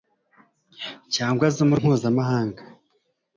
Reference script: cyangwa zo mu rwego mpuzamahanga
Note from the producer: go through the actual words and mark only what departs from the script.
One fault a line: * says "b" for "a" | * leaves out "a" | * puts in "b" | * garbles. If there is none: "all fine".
* leaves out "rwego"